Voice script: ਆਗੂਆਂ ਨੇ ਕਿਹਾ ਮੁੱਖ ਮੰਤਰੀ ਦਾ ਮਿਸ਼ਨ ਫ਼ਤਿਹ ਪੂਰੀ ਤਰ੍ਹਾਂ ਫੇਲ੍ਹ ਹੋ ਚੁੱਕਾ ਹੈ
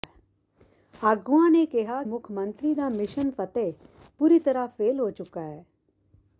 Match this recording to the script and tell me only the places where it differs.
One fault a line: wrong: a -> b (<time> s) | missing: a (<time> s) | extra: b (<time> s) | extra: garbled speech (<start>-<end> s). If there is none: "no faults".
no faults